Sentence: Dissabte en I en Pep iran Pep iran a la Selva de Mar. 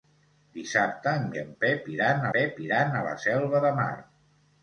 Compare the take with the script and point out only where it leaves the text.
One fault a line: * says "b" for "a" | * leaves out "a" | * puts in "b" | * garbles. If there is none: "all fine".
all fine